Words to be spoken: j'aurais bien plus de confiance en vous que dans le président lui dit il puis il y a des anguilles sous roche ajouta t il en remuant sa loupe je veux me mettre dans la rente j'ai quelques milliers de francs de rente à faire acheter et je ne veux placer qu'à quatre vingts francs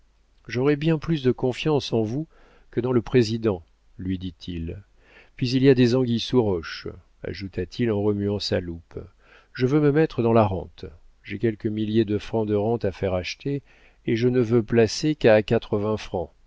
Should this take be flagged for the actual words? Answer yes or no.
no